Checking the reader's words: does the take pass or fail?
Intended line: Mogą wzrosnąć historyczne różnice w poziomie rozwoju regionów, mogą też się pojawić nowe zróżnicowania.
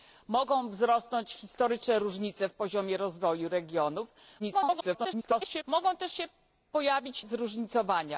fail